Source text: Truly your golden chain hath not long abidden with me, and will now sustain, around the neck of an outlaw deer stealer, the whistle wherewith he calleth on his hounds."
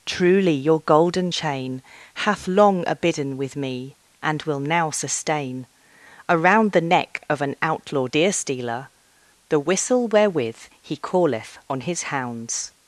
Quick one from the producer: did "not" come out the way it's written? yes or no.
no